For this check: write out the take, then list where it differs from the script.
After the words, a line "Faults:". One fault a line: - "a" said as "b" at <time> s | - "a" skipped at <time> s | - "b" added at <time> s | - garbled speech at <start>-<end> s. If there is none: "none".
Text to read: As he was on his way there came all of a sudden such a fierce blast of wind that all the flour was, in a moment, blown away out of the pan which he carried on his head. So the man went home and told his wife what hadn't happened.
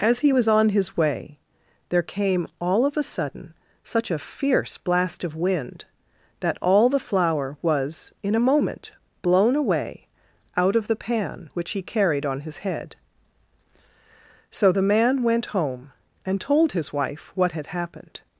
As he was on his way there came all of a sudden such a fierce blast of wind that all the flour was, in a moment, blown away out of the pan which he carried on his head. So the man went home and told his wife what had happened.
Faults:
- "hadn't" said as "had" at 17.5 s